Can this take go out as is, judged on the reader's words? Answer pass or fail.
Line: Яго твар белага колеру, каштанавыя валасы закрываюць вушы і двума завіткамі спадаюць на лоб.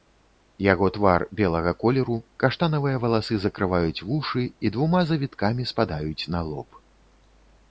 pass